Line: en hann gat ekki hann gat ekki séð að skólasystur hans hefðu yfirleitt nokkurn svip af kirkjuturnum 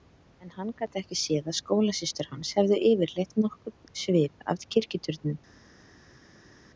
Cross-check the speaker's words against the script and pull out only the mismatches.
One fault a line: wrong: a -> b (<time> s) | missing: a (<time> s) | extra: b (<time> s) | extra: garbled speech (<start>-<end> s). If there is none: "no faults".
missing: hann gat ekki (1.2 s)